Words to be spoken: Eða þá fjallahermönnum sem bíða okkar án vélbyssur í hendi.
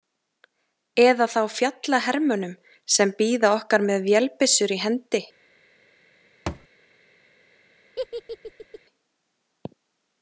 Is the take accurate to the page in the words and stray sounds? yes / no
no